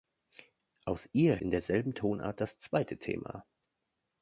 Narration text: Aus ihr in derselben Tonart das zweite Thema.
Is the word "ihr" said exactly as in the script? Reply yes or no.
yes